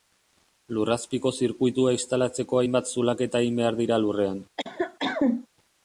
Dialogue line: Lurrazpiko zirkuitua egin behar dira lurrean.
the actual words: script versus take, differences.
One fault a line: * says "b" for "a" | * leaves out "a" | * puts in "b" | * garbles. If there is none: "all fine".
* puts in "instalatzeko hainbat zulaketa"